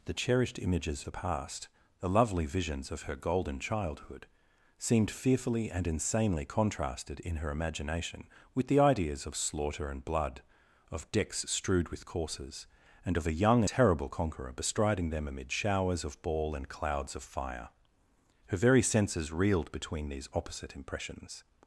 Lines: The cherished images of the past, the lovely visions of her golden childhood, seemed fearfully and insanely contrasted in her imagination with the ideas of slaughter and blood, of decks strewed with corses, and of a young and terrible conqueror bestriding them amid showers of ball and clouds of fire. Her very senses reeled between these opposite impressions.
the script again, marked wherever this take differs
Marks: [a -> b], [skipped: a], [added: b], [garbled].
The cherished images [skipped: of] the past, the lovely visions of her golden childhood, seemed fearfully and insanely contrasted in her imagination with the ideas of slaughter and blood, of decks strewed with corses, and of a young [skipped: and] terrible conqueror bestriding them amid showers of ball and clouds of fire. Her very senses reeled between these opposite impressions.